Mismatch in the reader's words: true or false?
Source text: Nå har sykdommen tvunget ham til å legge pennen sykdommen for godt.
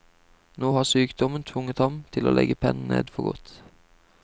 true